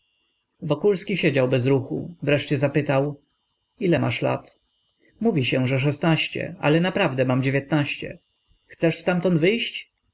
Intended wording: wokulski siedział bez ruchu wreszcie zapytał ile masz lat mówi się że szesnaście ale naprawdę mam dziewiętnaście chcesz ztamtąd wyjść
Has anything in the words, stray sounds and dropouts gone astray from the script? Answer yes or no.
no